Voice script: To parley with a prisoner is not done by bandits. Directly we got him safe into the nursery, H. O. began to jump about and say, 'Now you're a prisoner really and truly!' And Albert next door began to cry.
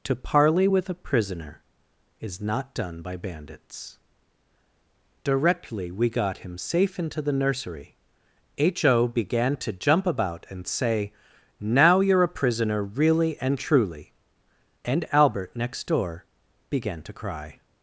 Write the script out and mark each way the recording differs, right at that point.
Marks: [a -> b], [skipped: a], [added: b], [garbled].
To parley with a prisoner is not done by bandits. Directly we got him safe into the nursery, H. O. began to jump about and say, 'Now you're a prisoner really and truly!' And Albert next door began to cry.